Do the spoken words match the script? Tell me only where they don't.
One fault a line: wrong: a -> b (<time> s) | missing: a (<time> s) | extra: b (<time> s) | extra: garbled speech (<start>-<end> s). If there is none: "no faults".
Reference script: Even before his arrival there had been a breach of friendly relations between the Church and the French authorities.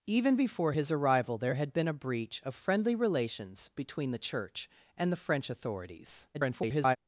extra: garbled speech (6.3-7.0 s)